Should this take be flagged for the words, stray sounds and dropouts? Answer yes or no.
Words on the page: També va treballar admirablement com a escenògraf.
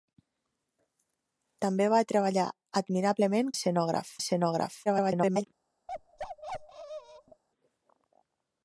yes